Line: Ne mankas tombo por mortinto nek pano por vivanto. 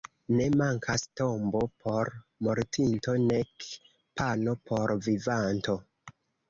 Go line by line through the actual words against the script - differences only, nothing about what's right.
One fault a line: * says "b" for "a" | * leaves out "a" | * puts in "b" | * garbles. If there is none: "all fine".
all fine